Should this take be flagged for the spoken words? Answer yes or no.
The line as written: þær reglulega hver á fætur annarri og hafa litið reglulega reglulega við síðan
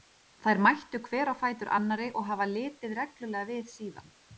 yes